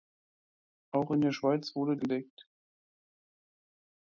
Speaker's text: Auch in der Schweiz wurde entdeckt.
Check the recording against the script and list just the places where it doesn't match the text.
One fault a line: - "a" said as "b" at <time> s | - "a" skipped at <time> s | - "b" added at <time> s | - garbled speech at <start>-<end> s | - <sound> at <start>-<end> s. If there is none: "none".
none